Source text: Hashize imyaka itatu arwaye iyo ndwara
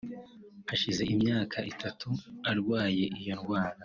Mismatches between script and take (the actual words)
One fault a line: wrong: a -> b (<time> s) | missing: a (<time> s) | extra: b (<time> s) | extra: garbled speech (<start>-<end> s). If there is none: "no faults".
no faults